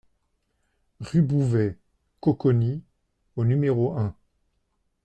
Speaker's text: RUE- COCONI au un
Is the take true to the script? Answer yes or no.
no